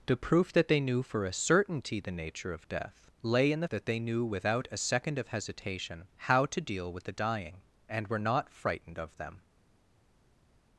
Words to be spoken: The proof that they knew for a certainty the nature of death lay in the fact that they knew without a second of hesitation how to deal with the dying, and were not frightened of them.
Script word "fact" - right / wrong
wrong